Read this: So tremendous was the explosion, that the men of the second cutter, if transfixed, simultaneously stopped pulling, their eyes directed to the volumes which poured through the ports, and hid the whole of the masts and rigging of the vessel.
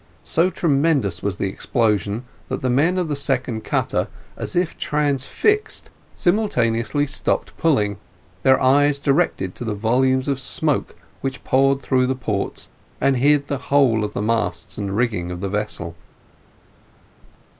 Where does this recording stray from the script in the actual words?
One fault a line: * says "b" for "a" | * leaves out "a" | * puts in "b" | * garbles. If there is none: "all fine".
* puts in "as"
* puts in "of smoke"